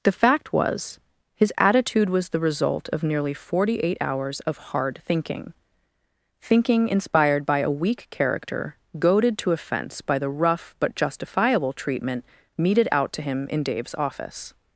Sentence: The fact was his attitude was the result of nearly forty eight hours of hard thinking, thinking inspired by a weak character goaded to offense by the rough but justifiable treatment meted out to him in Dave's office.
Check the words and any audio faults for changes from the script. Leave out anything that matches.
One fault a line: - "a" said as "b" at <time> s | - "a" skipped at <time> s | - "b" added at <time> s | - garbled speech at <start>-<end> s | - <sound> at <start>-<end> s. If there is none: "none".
none